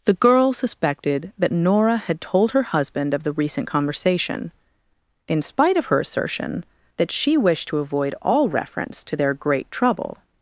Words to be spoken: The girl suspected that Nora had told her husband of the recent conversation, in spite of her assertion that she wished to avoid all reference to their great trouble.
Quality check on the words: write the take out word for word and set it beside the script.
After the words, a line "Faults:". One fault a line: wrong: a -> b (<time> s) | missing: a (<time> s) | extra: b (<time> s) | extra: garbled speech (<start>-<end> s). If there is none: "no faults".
The girl suspected that Nora had told her husband of the recent conversation, in spite of her assertion that she wished to avoid all reference to their great trouble.
Faults:
no faults